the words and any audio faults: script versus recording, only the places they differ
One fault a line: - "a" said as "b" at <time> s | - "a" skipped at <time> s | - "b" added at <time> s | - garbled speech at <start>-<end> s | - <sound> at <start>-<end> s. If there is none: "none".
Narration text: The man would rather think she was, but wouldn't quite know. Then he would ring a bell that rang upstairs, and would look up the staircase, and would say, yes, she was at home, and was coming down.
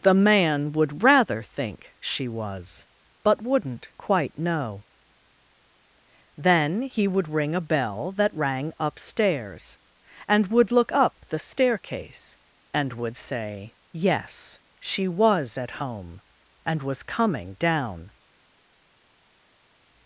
none